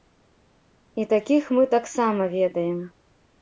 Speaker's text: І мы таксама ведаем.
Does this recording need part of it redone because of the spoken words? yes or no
yes